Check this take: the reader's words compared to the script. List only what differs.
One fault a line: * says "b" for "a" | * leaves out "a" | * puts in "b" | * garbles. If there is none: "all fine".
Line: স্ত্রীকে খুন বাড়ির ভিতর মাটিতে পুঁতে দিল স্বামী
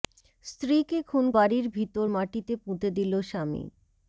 all fine